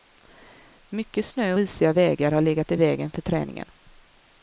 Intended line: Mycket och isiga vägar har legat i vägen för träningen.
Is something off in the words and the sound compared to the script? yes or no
yes